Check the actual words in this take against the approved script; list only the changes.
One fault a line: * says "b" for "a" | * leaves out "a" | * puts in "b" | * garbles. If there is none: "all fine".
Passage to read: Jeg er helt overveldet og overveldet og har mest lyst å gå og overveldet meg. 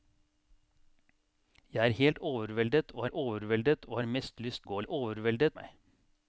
all fine